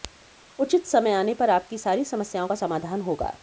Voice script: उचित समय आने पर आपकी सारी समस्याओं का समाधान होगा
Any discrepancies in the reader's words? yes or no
no